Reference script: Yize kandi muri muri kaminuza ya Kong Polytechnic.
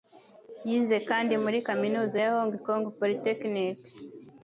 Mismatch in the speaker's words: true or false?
true